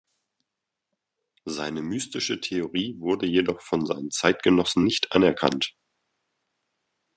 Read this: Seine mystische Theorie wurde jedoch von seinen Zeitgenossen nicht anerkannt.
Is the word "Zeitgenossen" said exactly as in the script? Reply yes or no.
yes